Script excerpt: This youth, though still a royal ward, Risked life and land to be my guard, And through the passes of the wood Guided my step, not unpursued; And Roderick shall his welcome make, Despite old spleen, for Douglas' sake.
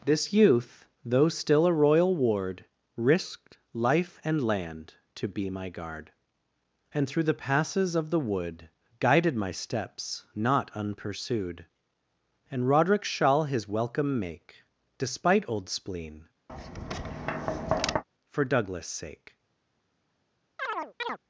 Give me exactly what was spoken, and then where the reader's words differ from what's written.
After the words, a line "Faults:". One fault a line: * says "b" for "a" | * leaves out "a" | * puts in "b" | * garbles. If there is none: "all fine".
This youth, though still a royal ward, Risked life and land to be my guard, And through the passes of the wood Guided my steps, not unpursued; And Roderick shall his welcome make, Despite old spleen, for Douglas' sake.
Faults:
* says "steps" for "step"